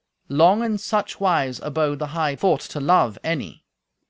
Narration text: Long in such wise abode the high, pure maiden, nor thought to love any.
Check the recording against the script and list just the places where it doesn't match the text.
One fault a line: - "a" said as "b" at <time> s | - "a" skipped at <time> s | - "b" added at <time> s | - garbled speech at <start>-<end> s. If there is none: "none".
- "pure maiden nor" skipped at 2.4 s